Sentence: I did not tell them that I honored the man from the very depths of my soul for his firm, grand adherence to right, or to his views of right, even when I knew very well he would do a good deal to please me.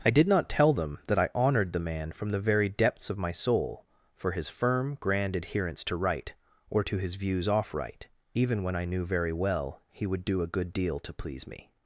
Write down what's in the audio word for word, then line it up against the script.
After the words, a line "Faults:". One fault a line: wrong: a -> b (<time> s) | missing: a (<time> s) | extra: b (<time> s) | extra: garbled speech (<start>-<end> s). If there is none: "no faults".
I did not tell them that I honored the man from the very depths of my soul for his firm, grand adherence to right, or to his views off right, even when I knew very well he would do a good deal to please me.
Faults:
wrong: of -> off (7.5 s)